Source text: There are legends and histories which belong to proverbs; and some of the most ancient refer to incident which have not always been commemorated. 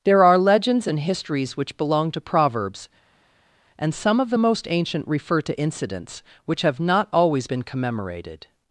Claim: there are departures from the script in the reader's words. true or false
true